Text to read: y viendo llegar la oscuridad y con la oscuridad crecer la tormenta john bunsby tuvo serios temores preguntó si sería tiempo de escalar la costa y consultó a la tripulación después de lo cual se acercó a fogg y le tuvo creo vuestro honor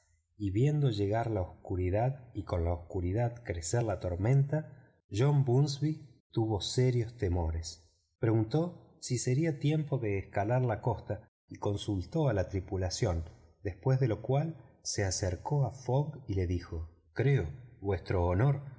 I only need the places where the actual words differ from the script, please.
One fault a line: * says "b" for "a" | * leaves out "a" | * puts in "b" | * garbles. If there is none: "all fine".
* says "dijo" for "tuvo"